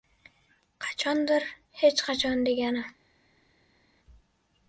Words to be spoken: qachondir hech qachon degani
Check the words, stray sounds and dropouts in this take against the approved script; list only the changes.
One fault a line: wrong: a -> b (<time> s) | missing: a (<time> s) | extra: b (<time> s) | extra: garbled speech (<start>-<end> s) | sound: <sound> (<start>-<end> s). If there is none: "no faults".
no faults